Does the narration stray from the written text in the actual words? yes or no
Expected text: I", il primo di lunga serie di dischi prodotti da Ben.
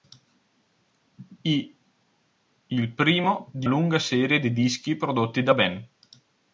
no